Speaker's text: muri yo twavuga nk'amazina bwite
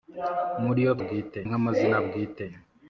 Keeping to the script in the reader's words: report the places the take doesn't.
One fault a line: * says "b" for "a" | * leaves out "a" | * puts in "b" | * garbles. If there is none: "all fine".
* says "bwite" for "twavuga"